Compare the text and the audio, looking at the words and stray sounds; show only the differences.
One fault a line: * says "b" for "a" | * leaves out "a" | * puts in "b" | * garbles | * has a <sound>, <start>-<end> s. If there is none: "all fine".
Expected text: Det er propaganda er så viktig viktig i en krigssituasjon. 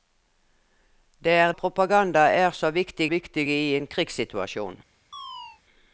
* has a chirp, 5.1-5.6 s